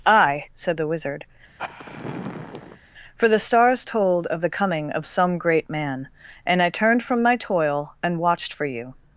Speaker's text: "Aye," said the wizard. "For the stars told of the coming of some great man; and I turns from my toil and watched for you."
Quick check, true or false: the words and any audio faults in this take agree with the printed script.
false